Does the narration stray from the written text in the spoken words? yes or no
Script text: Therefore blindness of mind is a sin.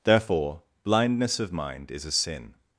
no